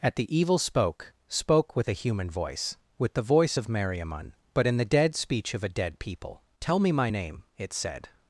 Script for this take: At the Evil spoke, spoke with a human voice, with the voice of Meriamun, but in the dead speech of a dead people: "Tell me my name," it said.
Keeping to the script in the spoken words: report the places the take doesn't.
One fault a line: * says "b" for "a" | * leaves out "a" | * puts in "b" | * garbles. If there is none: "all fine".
all fine